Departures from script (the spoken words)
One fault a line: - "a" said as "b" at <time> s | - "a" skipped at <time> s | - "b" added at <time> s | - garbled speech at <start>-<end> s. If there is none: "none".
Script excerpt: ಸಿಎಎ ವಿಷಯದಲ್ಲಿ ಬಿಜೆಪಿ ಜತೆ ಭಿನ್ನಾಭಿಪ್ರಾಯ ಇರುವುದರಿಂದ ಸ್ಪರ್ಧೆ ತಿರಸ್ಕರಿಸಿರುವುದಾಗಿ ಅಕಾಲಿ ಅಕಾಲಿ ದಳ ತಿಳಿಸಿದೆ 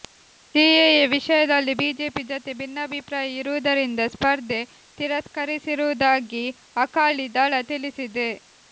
- "ಅಕಾಲಿ" skipped at 7.3 s